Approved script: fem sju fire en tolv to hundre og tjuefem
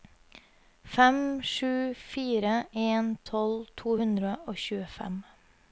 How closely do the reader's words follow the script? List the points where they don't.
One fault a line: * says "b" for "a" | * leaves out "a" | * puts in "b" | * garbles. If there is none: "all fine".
all fine